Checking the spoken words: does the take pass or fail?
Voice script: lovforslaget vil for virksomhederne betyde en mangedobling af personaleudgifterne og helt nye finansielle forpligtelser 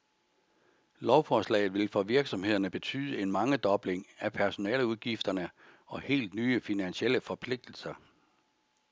pass